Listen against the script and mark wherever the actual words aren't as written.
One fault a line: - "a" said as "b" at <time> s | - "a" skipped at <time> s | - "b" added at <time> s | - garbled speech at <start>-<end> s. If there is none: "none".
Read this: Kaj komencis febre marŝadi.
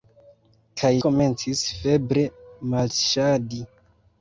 none